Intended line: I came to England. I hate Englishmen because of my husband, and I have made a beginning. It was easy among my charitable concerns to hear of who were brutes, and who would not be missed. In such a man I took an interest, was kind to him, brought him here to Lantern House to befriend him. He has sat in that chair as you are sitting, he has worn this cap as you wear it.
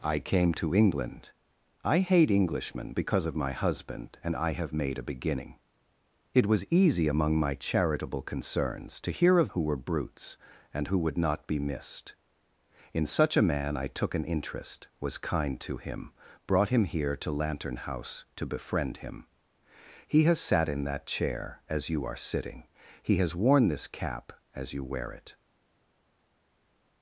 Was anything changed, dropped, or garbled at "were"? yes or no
no